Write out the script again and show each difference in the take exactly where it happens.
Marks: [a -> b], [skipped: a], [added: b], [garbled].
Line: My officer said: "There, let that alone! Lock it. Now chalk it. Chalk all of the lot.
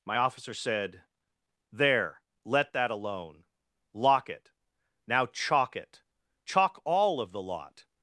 My officer said: "There, let that alone! Lock it. Now chalk it. Chalk all of the lot.